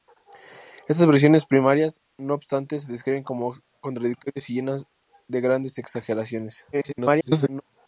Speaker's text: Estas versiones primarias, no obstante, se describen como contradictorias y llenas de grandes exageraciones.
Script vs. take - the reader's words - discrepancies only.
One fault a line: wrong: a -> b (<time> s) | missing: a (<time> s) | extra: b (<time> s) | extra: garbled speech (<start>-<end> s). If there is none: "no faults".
extra: garbled speech (6.7-7.6 s)